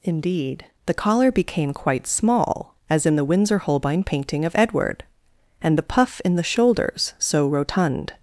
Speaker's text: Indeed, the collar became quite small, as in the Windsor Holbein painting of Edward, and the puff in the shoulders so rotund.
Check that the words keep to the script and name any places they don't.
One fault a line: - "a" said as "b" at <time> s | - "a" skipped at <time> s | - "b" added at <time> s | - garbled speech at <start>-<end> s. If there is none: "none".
none